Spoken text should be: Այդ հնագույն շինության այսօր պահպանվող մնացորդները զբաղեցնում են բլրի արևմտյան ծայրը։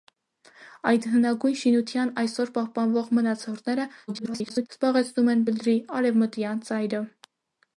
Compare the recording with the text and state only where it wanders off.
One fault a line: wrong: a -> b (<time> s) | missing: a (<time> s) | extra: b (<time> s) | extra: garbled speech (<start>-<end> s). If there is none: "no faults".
extra: garbled speech (4.1-4.7 s)